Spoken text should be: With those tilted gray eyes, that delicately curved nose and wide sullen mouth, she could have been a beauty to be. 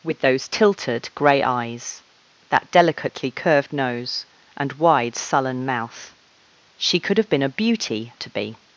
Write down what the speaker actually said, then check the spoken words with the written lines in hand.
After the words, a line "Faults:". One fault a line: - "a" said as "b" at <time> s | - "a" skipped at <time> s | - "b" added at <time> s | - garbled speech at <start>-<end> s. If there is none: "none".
With those tilted gray eyes, that delicately curved nose and wide sullen mouth, she could have been a beauty to be.
Faults:
none